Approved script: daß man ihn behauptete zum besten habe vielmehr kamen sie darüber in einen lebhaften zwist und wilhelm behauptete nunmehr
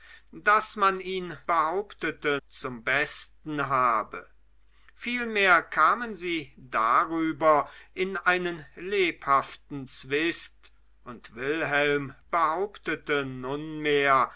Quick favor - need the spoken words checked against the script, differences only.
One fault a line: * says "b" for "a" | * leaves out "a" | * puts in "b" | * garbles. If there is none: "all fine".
all fine